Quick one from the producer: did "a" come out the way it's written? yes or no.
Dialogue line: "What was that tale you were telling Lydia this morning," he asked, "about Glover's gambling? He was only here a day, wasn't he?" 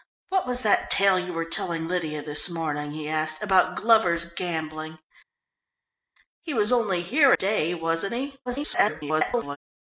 no